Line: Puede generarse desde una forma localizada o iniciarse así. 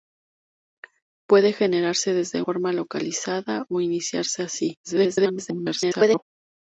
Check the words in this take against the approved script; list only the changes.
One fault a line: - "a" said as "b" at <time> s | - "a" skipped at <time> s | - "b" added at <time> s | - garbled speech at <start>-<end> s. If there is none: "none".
- "una" skipped at 2.4 s
- garbled speech at 4.8-6.2 s